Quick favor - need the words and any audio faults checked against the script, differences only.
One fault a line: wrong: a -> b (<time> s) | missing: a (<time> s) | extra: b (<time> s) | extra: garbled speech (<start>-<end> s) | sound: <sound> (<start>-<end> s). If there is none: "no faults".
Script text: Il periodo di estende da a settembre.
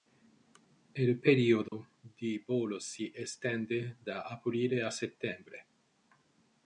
sound: dropout (1.7-1.7 s)
extra: volo si (2.5 s)
extra: aprile (4.2 s)